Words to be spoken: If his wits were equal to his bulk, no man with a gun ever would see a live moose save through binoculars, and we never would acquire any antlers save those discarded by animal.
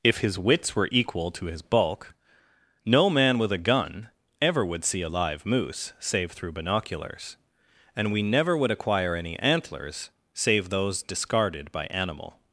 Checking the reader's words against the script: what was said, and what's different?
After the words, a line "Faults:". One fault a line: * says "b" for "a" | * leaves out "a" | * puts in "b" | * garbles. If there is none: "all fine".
If his wits were equal to his bulk, no man with a gun ever would see a live moose save through binoculars, and we never would acquire any antlers save those discarded by animal.
Faults:
all fine